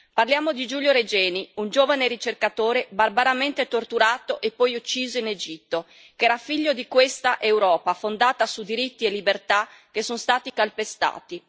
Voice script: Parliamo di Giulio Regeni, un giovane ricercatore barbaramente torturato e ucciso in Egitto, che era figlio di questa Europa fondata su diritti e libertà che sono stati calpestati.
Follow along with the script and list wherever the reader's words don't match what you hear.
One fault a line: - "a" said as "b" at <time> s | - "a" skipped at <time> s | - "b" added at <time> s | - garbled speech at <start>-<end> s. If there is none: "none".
- "poi" added at 4.5 s